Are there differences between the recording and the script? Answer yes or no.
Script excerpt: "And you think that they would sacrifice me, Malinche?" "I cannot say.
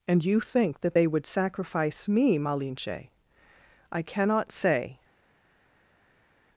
no